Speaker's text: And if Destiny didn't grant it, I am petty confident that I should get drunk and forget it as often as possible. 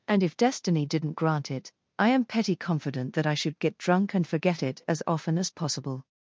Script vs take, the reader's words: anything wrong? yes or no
no